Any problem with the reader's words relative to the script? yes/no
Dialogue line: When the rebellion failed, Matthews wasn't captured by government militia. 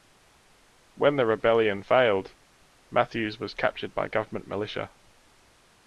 yes